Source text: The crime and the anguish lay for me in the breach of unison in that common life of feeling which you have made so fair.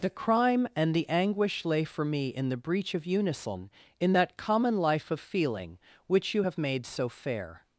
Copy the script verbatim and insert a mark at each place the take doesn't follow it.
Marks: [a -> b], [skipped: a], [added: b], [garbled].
The crime and the anguish lay for me in the breach of unison in that common life of feeling which you have made so fair.